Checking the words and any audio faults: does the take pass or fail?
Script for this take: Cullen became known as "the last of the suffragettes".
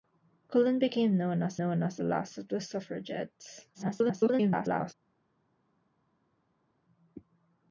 fail